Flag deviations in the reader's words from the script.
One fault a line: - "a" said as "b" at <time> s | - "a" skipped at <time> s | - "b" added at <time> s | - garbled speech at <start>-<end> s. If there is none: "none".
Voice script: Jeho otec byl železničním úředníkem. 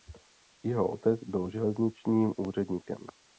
none